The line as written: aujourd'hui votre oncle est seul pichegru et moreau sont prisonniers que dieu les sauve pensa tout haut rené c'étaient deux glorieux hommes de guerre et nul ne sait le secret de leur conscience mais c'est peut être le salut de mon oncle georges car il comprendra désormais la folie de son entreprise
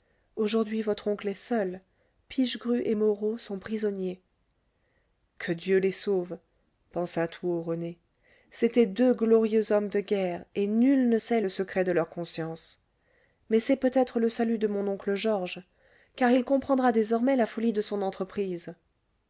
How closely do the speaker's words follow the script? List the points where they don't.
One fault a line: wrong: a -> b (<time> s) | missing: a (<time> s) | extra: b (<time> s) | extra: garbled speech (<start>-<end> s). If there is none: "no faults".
no faults